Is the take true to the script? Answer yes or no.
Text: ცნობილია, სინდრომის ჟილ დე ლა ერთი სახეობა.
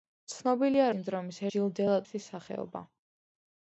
yes